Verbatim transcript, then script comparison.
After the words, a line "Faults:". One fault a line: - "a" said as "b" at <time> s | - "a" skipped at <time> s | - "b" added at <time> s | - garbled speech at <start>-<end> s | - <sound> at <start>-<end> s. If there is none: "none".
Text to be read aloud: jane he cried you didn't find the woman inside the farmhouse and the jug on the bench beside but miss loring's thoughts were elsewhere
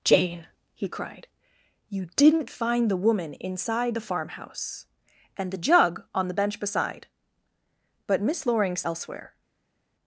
jane he cried you didn't find the woman inside the farmhouse and the jug on the bench beside but miss loring's elsewhere
Faults:
- "thoughts were" skipped at 8.9 s